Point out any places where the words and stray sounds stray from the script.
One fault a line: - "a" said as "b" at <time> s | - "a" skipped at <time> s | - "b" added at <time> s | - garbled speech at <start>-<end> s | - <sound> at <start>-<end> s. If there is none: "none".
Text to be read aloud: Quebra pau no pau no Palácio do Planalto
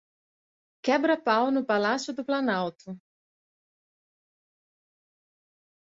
- "pau no" skipped at 1.6 s